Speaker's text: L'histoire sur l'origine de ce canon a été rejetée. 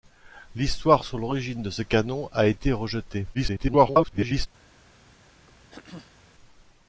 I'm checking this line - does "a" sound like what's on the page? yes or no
yes